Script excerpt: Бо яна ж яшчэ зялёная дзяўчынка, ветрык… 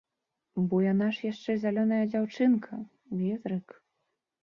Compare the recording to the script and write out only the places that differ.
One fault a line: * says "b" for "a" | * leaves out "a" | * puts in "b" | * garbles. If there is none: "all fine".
all fine